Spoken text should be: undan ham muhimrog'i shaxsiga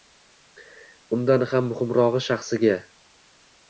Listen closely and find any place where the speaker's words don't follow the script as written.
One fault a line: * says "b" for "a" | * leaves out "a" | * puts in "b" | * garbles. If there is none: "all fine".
all fine